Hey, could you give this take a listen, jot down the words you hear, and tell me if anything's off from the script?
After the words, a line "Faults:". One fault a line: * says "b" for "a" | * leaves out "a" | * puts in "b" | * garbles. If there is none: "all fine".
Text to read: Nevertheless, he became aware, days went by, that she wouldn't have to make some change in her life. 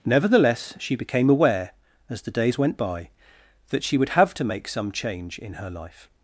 Nevertheless, she became aware, as the days went by, that she would have to make some change in her life.
Faults:
* says "she" for "he"
* puts in "as the"
* says "would" for "wouldn't"